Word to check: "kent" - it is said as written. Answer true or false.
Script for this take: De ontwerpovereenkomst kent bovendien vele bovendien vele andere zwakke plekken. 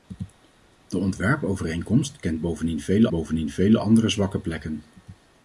true